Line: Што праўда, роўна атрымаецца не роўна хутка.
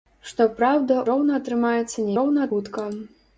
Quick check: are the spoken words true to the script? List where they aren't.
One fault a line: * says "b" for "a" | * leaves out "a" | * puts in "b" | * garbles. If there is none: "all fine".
all fine